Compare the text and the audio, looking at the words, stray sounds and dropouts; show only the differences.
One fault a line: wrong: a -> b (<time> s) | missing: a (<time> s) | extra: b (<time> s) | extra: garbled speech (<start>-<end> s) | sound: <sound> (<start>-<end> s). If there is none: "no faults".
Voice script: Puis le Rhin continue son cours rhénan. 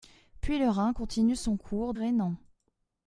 no faults